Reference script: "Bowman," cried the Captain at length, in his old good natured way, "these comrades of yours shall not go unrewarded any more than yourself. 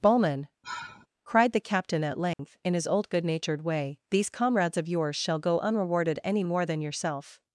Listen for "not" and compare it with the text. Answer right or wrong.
wrong